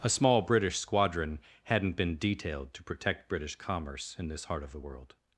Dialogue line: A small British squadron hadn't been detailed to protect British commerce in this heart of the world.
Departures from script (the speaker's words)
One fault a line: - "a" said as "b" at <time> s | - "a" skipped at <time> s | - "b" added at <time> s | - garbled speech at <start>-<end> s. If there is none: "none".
none